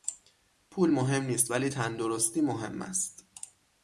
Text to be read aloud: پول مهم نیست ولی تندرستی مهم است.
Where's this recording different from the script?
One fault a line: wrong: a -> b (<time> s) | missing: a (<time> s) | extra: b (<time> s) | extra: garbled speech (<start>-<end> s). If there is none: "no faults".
no faults